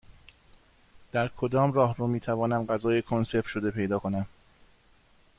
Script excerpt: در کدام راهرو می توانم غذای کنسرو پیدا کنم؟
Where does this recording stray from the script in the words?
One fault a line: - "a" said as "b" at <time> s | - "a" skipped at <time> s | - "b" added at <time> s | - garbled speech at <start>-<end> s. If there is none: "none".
- "شده" added at 3.5 s